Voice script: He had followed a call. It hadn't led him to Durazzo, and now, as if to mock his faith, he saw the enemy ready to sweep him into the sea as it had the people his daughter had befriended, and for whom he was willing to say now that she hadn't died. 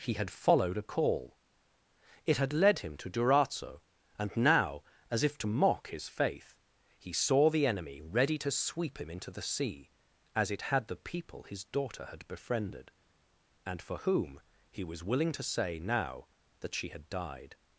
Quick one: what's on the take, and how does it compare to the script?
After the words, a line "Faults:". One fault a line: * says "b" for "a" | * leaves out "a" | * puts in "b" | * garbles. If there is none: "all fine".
He had followed a call. It had led him to Durazzo, and now, as if to mock his faith, he saw the enemy ready to sweep him into the sea as it had the people his daughter had befriended, and for whom he was willing to say now that she had died.
Faults:
* says "had" for "hadn't"
* says "had" for "hadn't"